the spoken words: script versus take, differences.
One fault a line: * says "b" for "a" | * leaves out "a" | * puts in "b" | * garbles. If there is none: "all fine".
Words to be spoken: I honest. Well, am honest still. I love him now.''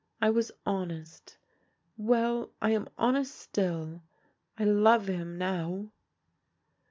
* puts in "was"
* puts in "I"